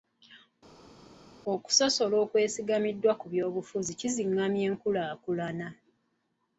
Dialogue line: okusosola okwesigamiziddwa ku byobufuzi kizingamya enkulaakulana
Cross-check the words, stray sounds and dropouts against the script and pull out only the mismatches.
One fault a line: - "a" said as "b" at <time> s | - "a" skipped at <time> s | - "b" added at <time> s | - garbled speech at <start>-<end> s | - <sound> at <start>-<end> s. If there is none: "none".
none